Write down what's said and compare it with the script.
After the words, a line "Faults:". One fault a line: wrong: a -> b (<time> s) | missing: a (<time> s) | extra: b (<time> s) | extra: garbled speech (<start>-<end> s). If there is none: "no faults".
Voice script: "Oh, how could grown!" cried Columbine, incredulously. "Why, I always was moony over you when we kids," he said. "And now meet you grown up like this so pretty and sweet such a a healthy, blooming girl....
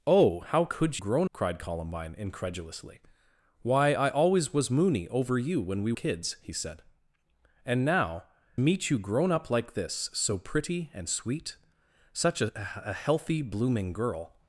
"Oh, how could grown!" cried Columbine, incredulously. "Why, I always was moony over you when we kids," he said. "And now meet you grown up like this so pretty and sweet such a a healthy, blooming girl....
Faults:
no faults